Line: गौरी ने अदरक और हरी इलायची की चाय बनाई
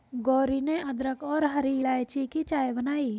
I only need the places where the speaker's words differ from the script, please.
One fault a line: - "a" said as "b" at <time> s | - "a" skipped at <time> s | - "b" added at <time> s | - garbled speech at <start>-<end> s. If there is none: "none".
none